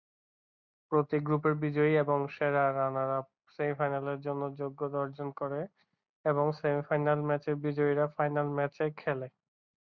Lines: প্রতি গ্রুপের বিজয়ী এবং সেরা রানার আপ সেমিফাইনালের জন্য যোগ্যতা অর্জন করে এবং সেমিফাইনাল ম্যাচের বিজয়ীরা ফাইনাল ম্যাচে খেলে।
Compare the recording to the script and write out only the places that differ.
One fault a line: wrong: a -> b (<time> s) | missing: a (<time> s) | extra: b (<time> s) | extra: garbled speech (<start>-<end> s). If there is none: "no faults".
no faults